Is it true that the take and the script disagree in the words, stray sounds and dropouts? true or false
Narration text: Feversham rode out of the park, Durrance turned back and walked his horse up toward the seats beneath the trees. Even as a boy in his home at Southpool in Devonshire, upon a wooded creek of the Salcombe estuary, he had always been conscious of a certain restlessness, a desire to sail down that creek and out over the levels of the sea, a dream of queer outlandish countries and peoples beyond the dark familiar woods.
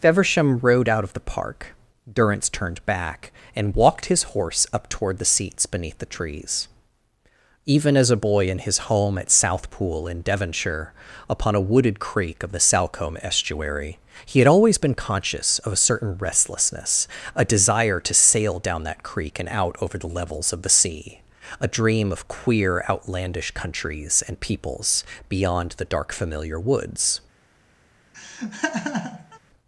true